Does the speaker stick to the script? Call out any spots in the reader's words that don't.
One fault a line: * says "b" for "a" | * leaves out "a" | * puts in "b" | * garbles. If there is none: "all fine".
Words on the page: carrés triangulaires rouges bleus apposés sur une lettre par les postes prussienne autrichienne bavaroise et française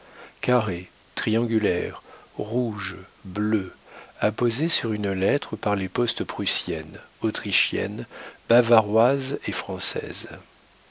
all fine